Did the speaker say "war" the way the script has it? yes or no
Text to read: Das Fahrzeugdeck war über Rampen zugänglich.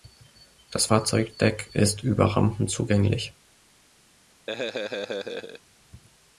no